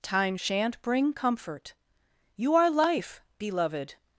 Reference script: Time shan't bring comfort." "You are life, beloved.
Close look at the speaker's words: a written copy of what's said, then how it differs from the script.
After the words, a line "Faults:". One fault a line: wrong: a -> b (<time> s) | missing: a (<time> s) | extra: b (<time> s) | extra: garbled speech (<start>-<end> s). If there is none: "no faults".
Time shan't bring comfort." "You are life, beloved.
Faults:
no faults